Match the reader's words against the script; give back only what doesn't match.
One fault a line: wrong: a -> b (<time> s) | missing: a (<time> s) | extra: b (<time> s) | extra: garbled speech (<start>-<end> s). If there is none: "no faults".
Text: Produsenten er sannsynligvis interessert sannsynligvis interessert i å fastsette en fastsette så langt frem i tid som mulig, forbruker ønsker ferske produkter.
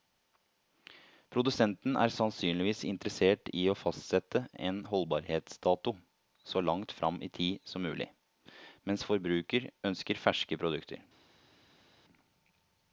missing: sannsynligvis interessert (3.5 s)
wrong: fastsette -> holdbarhetsdato (4.9 s)
extra: mens (8.8 s)